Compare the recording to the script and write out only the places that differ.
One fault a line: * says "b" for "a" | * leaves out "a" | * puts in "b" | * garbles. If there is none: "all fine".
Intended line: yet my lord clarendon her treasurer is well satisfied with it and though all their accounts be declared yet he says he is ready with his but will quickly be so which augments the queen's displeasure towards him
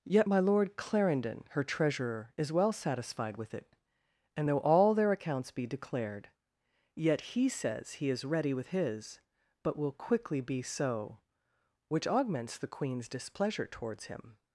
all fine